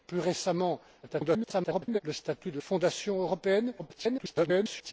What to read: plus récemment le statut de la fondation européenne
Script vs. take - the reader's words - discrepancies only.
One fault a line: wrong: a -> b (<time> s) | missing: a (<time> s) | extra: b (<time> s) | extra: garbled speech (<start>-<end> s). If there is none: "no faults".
extra: garbled speech (1.0-2.0 s)
missing: la (2.6 s)
extra: garbled speech (3.8-4.9 s)